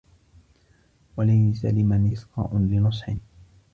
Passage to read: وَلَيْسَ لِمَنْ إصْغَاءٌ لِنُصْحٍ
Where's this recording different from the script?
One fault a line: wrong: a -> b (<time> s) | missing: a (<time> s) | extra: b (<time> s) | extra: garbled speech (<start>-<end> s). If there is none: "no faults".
no faults